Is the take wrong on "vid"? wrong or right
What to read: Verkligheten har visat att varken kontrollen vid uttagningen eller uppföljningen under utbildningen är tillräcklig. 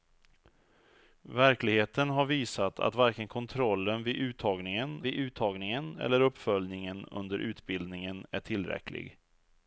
right